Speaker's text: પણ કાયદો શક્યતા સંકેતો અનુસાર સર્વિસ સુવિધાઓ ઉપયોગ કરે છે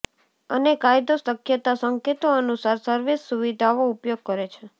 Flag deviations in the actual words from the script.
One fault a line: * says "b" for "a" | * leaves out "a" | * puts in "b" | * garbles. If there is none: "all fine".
* says "અને" for "પણ"